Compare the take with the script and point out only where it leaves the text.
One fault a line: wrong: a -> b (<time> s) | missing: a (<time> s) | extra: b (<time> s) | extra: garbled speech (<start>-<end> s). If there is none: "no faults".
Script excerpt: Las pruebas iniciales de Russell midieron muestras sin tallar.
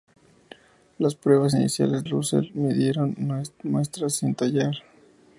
missing: de (2.1 s)